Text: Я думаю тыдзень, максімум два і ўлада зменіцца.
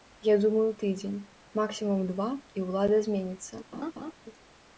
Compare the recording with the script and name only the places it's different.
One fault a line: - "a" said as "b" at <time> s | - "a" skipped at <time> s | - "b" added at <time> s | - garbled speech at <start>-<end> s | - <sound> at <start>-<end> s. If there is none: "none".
- laugh at 3.7-4.1 s